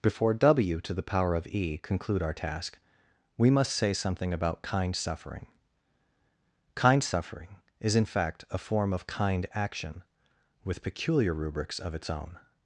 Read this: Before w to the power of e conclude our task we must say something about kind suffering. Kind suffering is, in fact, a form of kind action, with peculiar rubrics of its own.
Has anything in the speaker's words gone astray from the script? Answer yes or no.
no